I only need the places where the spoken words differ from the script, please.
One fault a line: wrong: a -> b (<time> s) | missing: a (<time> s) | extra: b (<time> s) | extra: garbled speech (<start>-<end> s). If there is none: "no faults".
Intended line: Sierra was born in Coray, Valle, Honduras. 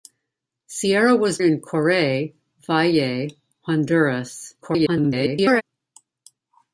missing: born (1.4 s)
extra: garbled speech (4.6-5.6 s)